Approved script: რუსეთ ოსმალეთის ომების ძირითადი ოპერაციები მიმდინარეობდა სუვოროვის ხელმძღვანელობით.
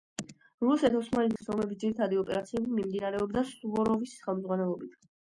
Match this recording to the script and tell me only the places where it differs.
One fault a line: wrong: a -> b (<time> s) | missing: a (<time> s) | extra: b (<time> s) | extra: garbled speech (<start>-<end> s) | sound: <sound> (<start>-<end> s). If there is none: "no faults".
sound: dropout (1.4-1.4 s)